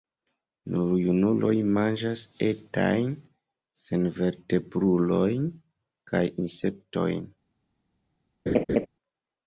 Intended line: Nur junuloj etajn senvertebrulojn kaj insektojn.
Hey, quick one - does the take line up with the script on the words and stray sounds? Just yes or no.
no